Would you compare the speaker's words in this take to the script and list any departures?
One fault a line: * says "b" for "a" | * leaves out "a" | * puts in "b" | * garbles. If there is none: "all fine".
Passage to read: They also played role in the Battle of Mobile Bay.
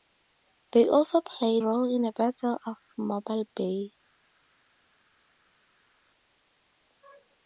all fine